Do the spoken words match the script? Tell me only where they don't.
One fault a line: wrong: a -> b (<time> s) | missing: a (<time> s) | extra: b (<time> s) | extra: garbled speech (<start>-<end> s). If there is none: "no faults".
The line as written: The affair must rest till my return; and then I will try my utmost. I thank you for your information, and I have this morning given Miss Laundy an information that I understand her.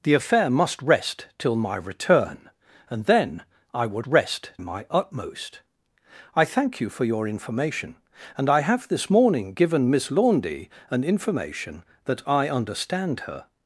wrong: try -> rest (4.1 s)